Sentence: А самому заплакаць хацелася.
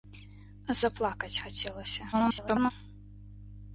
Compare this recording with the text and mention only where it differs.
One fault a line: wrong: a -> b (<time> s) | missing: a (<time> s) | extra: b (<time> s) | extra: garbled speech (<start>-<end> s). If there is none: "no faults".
missing: самому (0.8 s)
extra: garbled speech (2.1-2.7 s)